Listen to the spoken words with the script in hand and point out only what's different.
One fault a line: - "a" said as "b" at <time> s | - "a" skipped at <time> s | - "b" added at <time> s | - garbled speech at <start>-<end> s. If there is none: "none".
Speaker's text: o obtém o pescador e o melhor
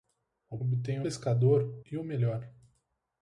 none